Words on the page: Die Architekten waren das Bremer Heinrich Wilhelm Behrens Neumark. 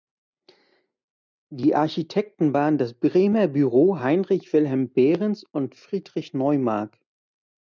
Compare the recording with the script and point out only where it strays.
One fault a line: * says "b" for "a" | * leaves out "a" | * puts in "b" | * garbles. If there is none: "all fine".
* puts in "Büro"
* puts in "und Friedrich"